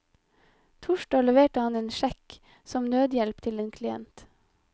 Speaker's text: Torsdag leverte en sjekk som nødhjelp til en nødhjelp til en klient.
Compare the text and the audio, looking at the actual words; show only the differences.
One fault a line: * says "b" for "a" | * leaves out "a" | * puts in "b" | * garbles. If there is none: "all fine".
* puts in "han"
* leaves out "nødhjelp til en"